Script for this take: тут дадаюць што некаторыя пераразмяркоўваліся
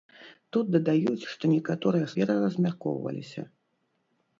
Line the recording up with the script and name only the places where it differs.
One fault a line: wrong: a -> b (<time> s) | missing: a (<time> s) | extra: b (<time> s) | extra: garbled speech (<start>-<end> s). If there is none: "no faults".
no faults